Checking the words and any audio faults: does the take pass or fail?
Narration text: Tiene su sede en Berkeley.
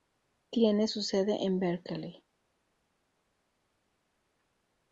pass